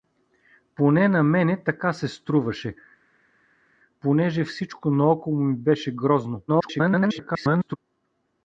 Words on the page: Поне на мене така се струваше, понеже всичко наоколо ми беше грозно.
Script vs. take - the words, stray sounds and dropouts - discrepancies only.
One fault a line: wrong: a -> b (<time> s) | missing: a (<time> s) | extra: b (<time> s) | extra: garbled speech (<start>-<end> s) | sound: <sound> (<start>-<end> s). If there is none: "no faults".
extra: garbled speech (6.5-7.8 s)